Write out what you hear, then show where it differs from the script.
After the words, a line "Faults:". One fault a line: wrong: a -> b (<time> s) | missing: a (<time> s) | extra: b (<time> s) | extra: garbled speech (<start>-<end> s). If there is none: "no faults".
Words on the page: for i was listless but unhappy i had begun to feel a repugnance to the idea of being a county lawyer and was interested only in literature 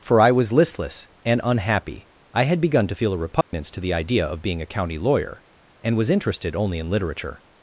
for i was listless and unhappy i had begun to feel a repugnance to the idea of being a county lawyer and was interested only in literature
Faults:
wrong: but -> and (1.2 s)